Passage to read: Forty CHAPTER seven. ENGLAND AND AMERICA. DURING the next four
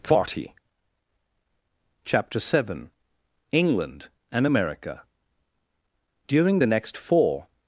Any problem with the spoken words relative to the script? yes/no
no